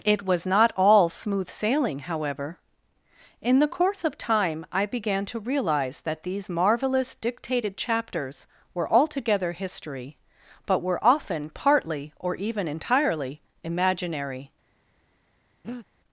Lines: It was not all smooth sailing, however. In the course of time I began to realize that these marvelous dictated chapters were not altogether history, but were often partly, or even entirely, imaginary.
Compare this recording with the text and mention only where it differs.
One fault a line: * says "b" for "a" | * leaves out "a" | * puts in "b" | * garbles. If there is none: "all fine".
* leaves out "not"